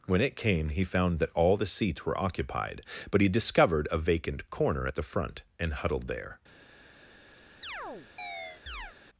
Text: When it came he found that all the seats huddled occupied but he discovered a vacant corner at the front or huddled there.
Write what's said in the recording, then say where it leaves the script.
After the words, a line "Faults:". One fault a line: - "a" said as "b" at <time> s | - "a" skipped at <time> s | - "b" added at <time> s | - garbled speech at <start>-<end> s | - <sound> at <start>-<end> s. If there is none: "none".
When it came he found that all the seats were occupied but he discovered a vacant corner at the front and huddled there.
Faults:
- "huddled" said as "were" at 2.0 s
- "or" said as "and" at 5.6 s
- chirp at 7.6-9.0 s